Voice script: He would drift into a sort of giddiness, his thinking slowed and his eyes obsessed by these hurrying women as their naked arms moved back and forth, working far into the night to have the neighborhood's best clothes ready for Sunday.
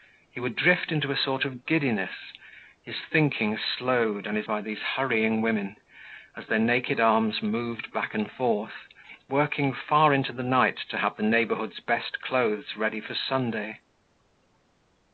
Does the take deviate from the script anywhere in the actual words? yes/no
yes